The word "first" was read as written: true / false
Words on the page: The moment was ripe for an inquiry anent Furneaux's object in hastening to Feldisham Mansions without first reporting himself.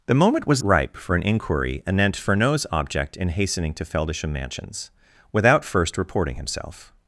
true